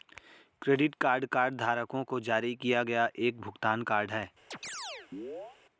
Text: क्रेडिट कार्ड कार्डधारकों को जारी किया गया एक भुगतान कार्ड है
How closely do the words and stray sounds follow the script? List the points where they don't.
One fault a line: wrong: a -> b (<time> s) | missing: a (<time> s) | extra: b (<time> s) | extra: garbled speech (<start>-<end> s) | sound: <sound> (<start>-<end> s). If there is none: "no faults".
sound: chirp (4.5-5.6 s)